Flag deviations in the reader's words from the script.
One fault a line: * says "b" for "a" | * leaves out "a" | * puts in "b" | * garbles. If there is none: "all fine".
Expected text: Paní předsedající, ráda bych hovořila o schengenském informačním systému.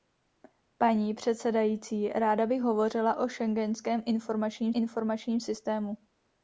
* puts in "informačním"